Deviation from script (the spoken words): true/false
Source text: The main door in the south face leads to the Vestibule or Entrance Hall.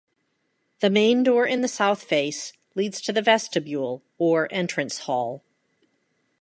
false